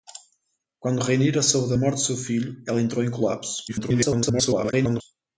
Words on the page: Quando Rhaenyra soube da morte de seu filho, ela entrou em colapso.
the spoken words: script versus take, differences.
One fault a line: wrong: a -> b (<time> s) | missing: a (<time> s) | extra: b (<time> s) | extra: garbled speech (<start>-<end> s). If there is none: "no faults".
extra: garbled speech (3.7-5.0 s)